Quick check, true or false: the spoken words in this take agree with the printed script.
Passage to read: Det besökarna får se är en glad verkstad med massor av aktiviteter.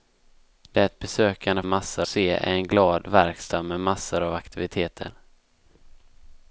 false